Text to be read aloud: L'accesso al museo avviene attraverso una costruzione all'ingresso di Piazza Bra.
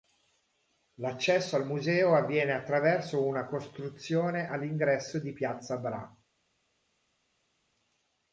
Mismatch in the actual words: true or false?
false